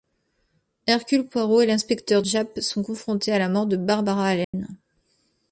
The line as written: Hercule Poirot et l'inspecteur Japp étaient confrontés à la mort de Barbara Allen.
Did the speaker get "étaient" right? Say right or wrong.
wrong